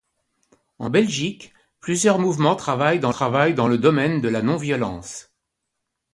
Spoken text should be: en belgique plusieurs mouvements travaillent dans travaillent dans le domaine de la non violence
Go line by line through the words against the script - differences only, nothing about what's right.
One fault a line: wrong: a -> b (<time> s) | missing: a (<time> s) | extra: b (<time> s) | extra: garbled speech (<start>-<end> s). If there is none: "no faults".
no faults